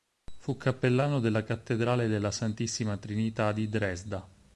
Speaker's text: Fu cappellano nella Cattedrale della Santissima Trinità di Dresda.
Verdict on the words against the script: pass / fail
fail